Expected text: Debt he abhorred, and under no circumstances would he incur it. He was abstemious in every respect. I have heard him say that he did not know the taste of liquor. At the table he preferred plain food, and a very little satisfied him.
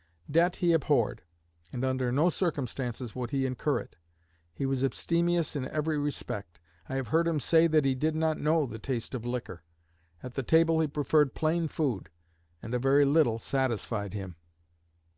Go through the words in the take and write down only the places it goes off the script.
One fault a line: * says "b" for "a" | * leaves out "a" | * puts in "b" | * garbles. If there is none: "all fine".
all fine